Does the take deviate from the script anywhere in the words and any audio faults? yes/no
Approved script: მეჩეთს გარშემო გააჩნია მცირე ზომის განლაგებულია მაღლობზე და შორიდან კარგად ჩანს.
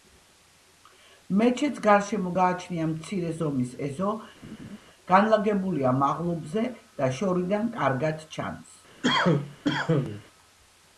yes